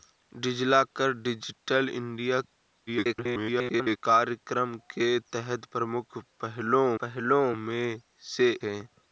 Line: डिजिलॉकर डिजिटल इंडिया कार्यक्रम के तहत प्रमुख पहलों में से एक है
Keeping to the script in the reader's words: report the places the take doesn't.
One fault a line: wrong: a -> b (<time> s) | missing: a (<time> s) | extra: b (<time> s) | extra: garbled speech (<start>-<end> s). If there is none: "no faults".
extra: garbled speech (2.9-4.0 s)
extra: पहलों (7.0 s)
missing: एक (8.5 s)